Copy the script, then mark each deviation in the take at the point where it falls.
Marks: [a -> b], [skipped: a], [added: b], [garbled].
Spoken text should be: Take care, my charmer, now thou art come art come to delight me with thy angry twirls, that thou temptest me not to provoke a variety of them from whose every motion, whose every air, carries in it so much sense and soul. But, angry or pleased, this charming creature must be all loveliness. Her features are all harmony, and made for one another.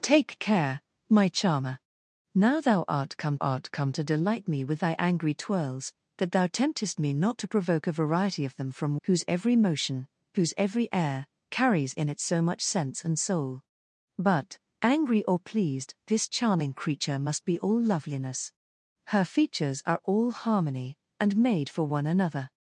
Take care, my charmer, now thou art come art come to delight me with thy angry twirls, that thou temptest me not to provoke a variety of them from whose every motion, whose every air, carries in it so much sense and soul. But, angry or pleased, this charming creature must be all loveliness. Her features are all harmony, and made for one another.